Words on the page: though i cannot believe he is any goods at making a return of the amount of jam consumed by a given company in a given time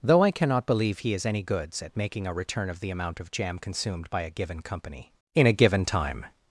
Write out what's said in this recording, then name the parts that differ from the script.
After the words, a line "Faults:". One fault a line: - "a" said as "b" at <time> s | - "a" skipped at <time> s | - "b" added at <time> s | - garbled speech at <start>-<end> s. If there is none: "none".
though i cannot believe he is any goods at making a return of the amount of jam consumed by a given company in a given time
Faults:
none